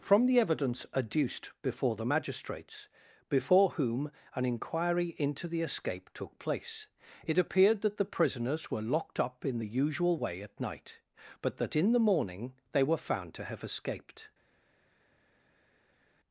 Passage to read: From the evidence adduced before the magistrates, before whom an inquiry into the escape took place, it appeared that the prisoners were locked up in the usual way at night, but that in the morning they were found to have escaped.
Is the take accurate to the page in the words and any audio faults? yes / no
yes